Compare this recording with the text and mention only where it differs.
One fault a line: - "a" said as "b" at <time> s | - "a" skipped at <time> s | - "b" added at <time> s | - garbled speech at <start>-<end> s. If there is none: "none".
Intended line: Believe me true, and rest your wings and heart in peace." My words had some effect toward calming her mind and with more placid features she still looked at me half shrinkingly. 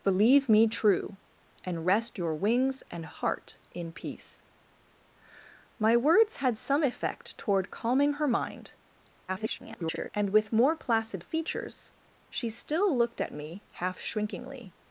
- garbled speech at 9.3-10.1 s